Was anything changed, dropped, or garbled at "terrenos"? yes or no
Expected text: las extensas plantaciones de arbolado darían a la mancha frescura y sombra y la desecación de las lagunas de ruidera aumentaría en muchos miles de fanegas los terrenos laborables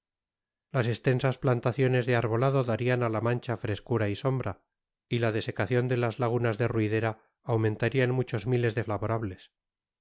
yes